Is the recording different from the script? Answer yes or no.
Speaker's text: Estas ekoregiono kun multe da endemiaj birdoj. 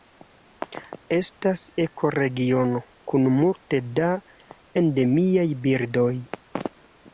no